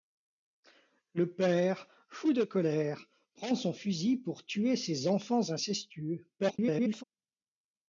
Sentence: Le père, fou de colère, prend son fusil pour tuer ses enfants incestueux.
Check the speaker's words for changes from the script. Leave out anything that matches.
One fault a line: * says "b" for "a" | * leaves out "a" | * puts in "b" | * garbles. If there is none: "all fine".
* garbles